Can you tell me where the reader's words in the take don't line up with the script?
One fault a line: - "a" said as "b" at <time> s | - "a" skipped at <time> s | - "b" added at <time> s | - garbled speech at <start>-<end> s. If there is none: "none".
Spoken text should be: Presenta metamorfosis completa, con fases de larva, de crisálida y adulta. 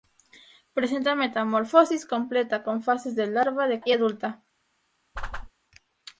- "crisálida" skipped at 3.8 s